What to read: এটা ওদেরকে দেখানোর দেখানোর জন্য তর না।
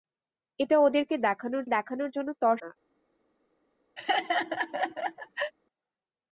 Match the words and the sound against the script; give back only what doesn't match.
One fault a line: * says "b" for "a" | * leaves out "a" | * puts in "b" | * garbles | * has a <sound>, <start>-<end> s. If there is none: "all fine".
* has a laugh, 4.0-5.5 s